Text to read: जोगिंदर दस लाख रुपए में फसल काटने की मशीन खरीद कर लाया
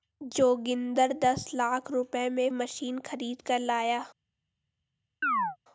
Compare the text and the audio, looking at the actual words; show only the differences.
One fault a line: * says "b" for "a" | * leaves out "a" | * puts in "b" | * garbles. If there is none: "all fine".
* leaves out "फसल काटने की"